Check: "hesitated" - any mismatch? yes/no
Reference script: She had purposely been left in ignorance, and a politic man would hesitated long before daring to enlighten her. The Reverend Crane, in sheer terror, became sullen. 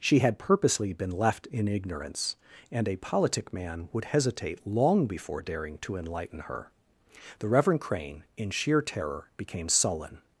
yes